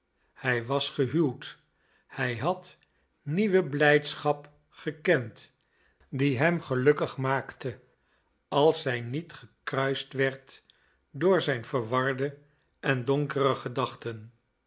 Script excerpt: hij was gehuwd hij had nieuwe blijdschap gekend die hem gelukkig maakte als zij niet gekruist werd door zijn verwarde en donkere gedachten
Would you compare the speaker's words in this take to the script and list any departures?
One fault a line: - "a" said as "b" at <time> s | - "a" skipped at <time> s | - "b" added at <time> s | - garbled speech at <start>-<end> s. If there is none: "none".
none